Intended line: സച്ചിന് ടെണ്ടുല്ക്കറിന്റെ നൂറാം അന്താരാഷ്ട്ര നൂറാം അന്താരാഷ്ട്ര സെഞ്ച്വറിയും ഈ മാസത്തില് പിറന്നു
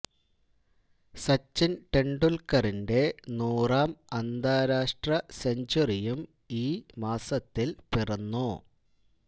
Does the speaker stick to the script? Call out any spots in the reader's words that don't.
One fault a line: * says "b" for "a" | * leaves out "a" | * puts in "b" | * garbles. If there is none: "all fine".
* leaves out "നൂറാം അന്താരാഷ്ട്ര"